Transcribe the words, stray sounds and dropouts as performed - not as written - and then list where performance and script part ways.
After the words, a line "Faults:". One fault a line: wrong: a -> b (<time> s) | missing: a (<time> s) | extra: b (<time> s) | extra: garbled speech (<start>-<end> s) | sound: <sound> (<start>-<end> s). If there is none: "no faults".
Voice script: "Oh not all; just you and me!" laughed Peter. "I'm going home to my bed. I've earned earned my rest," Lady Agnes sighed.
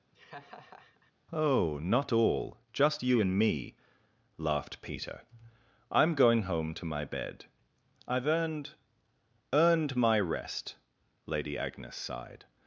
"Oh not all; just you and me!" laughed Peter. "I'm going home to my bed. I've earned earned my rest," Lady Agnes sighed.
Faults:
sound: laugh (0.1-1.1 s)